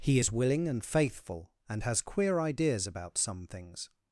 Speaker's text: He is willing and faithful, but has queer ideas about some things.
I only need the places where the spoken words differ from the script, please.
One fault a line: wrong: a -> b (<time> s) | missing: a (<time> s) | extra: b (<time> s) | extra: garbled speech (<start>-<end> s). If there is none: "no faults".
wrong: but -> and (1.7 s)